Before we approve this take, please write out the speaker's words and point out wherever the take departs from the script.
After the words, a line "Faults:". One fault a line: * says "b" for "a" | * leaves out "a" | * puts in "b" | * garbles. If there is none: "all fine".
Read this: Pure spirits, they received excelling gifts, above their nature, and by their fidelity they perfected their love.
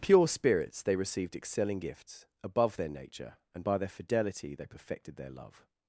Pure spirits, they received excelling gifts, above their nature, and by their fidelity they perfected their love.
Faults:
all fine